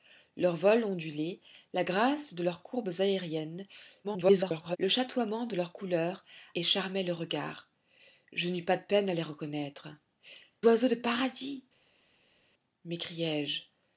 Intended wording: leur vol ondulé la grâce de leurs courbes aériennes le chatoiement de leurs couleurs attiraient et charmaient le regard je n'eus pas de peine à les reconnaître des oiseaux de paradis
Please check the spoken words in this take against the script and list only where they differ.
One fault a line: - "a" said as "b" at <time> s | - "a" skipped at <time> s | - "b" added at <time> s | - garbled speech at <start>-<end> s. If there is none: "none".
- garbled speech at 4.0-4.8 s
- "attiraient" skipped at 6.2 s
- "des" skipped at 9.9 s